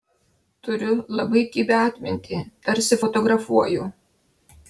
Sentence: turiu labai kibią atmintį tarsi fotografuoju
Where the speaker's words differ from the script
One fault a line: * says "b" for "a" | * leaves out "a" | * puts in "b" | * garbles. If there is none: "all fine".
all fine